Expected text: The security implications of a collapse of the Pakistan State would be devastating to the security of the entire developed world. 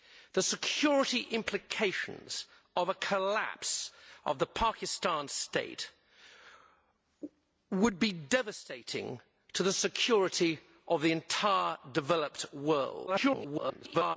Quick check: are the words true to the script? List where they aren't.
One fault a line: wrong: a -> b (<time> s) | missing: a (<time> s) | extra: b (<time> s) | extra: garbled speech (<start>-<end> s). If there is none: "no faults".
extra: garbled speech (13.1-14.2 s)